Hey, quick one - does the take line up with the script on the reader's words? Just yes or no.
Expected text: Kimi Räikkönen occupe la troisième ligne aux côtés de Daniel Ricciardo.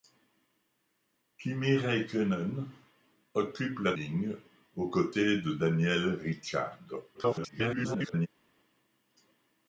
no